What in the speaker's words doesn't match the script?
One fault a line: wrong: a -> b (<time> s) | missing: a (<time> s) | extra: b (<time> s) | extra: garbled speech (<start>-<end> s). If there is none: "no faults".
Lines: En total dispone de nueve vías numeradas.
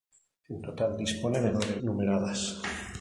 missing: vías (1.8 s)